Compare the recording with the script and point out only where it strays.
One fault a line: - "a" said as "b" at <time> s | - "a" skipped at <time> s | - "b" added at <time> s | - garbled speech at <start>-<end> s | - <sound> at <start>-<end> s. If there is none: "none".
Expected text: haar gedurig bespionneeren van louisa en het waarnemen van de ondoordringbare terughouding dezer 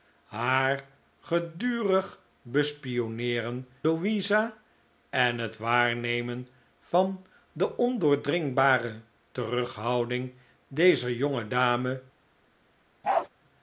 - "van" skipped at 3.7 s
- bark at 13.0-13.3 s